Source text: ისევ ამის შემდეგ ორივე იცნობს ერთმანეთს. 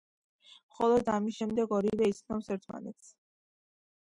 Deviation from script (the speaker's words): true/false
true